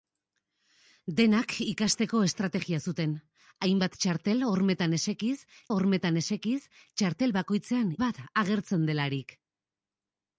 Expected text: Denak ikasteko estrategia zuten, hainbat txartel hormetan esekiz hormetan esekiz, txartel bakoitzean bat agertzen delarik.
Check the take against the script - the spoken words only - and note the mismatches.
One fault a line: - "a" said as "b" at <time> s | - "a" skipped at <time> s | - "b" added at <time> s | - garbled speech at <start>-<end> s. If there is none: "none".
none